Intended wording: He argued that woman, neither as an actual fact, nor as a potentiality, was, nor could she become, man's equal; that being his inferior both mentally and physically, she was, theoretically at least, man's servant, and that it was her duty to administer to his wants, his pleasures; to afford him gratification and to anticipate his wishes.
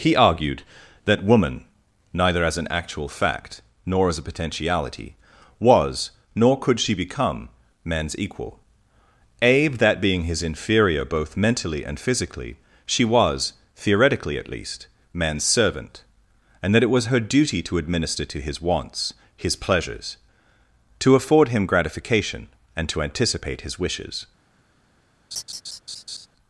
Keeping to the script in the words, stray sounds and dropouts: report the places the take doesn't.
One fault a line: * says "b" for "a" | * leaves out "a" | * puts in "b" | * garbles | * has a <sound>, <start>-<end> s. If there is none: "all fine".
* puts in "abe"
* has a laugh, 25.3-26.3 s